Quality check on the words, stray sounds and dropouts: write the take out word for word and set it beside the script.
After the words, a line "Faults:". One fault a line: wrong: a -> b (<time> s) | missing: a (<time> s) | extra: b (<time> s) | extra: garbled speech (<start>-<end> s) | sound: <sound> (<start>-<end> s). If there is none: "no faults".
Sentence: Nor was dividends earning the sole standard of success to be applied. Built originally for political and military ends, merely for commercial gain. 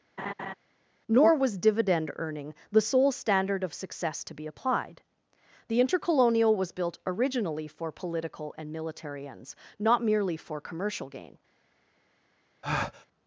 Nor was dividend earning the sole standard of success to be applied. The Intercolonial was built originally for political and military ends, not merely for commercial gain.
Faults:
sound: laugh (0.2-0.5 s)
wrong: dividends -> dividend (1.6 s)
extra: The Intercolonial was (5.7 s)
extra: not (9.8 s)
sound: breath (12.6-13.1 s)